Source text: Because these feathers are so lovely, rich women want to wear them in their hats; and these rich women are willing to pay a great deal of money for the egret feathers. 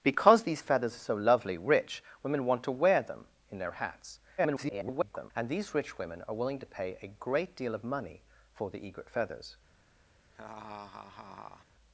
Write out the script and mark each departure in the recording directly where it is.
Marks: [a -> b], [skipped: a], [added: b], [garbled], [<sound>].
Because these feathers are so lovely, rich women want to wear them in their hats; [garbled] and these rich women are willing to pay a great deal of money for the egret feathers. [laugh]